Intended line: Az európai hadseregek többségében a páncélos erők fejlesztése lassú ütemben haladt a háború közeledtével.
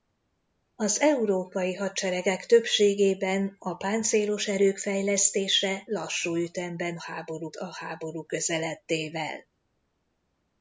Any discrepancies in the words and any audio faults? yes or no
yes